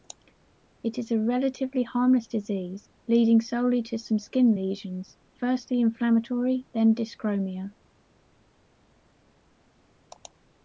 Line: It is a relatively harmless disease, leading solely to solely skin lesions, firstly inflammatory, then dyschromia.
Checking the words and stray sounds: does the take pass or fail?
fail